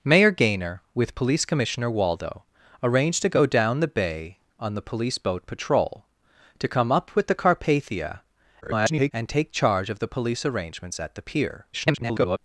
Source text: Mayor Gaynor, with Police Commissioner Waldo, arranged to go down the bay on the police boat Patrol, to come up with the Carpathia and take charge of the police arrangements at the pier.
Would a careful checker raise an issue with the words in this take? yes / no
yes